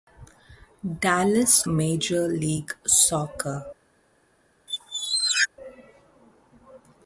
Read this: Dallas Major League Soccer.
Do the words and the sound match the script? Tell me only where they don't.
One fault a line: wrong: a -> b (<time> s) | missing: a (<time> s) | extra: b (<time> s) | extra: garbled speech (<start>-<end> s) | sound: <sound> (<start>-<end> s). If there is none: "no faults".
sound: squeak (4.7-5.5 s)